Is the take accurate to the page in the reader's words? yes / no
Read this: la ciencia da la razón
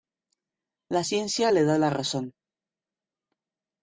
no